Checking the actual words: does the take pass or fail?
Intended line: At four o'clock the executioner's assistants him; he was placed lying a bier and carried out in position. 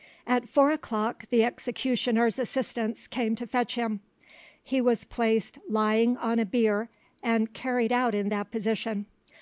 fail